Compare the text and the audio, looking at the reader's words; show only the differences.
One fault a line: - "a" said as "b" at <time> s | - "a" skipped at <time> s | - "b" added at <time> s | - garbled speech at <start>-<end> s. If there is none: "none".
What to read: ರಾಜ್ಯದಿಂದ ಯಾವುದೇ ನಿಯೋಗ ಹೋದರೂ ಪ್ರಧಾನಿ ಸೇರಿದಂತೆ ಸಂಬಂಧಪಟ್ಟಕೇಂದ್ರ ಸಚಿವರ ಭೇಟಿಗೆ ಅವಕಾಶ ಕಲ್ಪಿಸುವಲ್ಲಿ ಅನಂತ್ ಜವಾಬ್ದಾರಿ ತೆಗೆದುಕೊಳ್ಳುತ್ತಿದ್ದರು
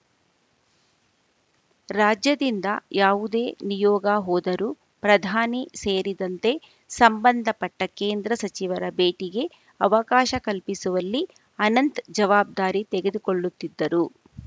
none